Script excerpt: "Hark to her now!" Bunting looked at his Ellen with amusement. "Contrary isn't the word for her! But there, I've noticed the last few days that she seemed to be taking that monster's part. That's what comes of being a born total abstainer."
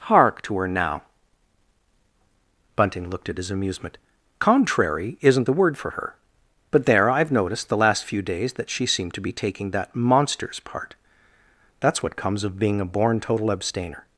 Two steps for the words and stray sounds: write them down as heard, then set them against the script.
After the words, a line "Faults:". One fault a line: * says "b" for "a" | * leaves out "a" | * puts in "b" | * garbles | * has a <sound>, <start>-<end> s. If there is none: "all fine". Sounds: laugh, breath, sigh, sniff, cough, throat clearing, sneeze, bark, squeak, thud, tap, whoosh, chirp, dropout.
"Hark to her now!" Bunting looked at his amusement. "Contrary isn't the word for her! But there, I've noticed the last few days that she seemed to be taking that monster's part. That's what comes of being a born total abstainer."
Faults:
* leaves out "Ellen with"